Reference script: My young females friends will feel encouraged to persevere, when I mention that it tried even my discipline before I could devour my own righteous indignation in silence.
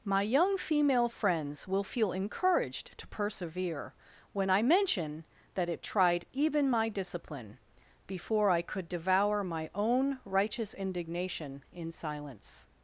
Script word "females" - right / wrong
wrong